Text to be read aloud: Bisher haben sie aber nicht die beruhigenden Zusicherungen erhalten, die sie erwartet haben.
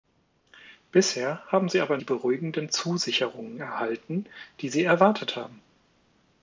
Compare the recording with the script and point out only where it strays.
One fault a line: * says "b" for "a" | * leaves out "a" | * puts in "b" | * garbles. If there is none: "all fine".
* leaves out "nicht"